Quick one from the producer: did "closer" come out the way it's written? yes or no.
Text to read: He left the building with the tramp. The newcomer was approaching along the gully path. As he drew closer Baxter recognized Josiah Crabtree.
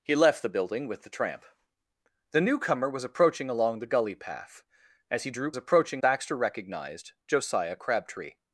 no